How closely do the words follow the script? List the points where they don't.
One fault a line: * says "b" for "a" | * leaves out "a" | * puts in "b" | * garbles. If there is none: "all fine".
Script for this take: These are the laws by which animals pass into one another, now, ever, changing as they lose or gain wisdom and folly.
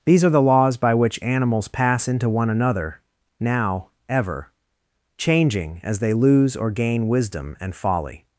all fine